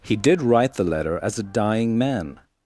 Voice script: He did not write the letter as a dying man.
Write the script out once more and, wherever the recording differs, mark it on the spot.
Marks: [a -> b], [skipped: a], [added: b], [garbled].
He did [skipped: not] write the letter as a dying man.